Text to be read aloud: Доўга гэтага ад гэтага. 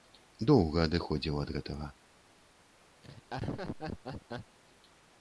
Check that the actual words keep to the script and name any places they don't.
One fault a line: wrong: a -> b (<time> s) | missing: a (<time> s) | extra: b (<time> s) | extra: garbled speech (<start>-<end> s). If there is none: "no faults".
wrong: гэтага -> адыходзіў (0.9 s)